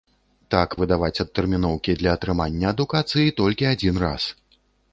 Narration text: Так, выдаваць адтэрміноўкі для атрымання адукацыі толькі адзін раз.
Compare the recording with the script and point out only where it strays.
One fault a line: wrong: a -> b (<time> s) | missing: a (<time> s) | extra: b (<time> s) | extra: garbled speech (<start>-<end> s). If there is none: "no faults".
no faults